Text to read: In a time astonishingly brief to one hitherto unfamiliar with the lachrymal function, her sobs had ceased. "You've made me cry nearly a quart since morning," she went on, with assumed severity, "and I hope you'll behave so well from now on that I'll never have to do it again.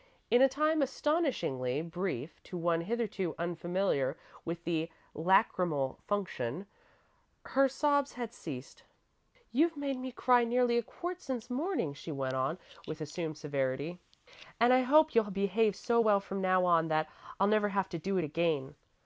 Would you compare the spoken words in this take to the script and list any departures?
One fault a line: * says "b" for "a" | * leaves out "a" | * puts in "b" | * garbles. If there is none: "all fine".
all fine